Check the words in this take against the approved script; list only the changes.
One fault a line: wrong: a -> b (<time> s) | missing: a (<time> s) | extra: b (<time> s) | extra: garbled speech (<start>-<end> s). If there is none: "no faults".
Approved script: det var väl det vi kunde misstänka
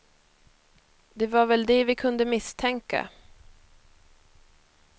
no faults